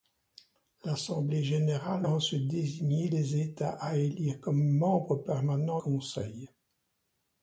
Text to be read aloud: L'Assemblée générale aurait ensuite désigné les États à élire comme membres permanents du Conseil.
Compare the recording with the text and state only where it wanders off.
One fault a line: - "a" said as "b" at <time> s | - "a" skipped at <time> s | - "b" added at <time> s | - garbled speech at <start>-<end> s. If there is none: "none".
- "aurait" skipped at 2.1 s
- "du" skipped at 5.8 s